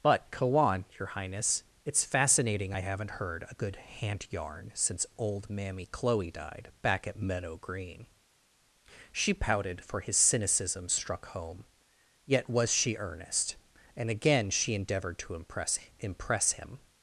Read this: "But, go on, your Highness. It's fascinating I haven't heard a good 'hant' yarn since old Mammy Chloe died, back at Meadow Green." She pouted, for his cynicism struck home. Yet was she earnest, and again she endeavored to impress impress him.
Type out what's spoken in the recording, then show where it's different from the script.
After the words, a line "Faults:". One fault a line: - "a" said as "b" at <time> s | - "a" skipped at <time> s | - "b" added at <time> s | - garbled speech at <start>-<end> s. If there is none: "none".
"But, go on, your Highness. It's fascinating I haven't heard a good 'hant' yarn since old Mammy Chloe died, back at Meadow Green." She pouted, for his cynicism struck home. Yet was she earnest, and again she endeavored to impress impress him.
Faults:
none